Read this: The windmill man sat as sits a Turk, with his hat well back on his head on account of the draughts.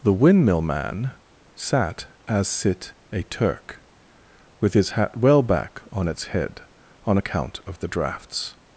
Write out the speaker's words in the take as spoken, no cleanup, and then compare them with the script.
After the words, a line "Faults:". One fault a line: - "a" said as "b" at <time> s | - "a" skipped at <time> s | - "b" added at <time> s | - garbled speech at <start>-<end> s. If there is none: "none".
The windmill man sat as sit a Turk, with his hat well back on its head on account of the draughts.
Faults:
- "sits" said as "sit" at 2.5 s
- "his" said as "its" at 6.1 s